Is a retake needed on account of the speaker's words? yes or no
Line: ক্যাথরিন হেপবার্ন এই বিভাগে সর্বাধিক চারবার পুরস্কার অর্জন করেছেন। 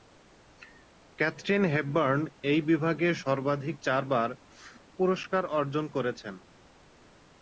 no